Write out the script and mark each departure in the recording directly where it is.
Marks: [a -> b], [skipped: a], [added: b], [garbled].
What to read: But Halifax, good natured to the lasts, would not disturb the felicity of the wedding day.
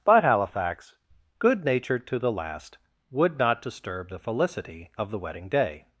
But Halifax, good natured to the [lasts, -> last] would not disturb the felicity of the wedding day.